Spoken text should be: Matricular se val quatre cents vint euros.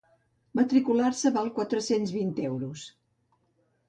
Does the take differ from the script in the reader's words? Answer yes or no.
no